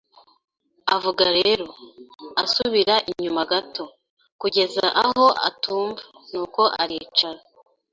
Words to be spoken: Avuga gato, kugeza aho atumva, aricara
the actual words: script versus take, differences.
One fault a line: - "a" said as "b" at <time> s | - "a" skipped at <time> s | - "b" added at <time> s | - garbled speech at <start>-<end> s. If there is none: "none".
- "rero asubira inyuma" added at 1.4 s
- "nuko" added at 6.3 s